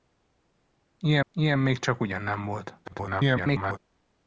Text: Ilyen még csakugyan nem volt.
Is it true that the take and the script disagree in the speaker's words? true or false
true